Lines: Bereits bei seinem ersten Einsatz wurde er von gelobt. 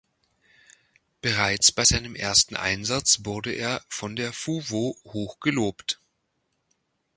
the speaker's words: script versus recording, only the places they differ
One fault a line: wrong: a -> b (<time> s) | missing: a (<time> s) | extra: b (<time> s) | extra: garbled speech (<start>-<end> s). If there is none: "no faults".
extra: der fuwo hoch (4.1 s)